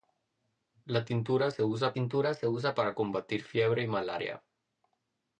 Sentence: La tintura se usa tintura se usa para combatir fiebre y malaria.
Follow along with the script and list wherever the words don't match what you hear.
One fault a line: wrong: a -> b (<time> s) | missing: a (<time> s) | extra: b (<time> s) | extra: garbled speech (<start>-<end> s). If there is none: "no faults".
no faults